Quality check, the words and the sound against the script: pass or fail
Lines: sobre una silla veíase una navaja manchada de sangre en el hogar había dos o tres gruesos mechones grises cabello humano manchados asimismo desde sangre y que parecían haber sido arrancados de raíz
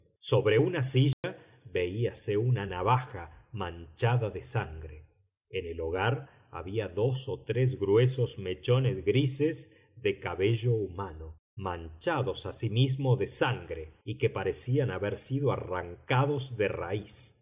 fail